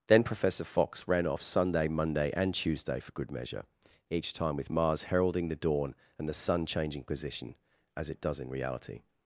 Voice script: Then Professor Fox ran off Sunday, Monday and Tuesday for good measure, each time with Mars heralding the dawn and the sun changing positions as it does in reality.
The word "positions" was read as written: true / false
false